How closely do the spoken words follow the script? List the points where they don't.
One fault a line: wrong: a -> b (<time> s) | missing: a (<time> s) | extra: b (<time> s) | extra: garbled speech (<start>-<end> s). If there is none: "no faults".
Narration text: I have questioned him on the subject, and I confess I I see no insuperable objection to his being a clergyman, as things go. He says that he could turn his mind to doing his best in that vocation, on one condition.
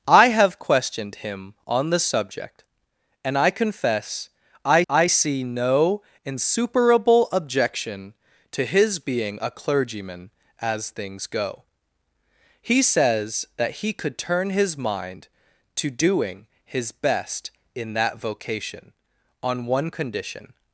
no faults